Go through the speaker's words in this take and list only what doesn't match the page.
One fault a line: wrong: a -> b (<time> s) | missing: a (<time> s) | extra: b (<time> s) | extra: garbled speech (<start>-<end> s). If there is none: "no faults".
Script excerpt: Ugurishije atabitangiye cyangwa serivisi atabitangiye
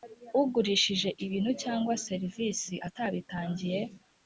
wrong: atabitangiye -> ibintu (1.2 s)